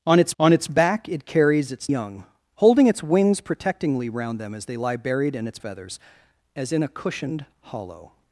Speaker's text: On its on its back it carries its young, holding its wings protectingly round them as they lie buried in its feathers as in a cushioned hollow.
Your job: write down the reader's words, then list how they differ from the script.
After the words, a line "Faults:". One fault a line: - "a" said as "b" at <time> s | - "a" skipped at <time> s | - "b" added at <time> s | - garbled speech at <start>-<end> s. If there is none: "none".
On its on its back it carries its young, holding its wings protectingly round them as they lie buried in its feathers as in a cushioned hollow.
Faults:
none